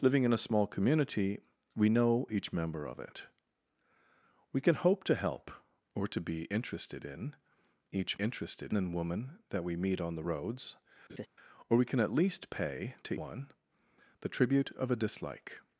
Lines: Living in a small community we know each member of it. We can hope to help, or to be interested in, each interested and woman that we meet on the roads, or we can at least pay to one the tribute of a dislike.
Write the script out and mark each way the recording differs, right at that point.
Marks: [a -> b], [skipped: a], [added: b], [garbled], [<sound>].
Living in a small community we know each member of it. We can hope to help, or to be interested in, each interested and woman that we meet on the roads, [laugh] or we can at least pay to one the tribute of a dislike.